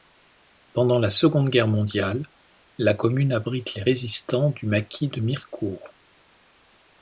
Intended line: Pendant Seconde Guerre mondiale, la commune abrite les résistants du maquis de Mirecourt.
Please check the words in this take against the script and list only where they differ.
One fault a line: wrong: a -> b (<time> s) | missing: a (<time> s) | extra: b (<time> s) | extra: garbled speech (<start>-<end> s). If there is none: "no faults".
extra: la (1.0 s)